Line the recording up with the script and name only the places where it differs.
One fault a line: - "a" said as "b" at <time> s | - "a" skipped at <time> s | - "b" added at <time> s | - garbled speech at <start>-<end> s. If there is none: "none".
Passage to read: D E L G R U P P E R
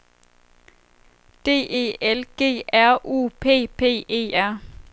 none